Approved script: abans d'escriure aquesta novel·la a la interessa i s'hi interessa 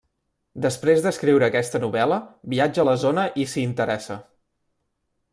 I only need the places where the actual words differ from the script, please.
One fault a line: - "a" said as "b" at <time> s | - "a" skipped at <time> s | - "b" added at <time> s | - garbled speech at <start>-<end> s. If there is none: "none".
- "abans" said as "després" at 0.7 s
- "viatja" added at 2.5 s
- "interessa" said as "zona" at 3.0 s